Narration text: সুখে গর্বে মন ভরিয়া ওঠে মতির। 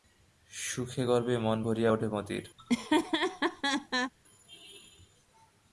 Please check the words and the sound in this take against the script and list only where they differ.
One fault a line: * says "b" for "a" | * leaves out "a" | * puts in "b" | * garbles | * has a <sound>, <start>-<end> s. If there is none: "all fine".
* has a laugh, 2.6-4.1 s